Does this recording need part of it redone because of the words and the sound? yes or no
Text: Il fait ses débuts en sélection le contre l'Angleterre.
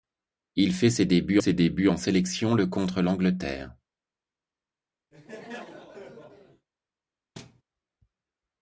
yes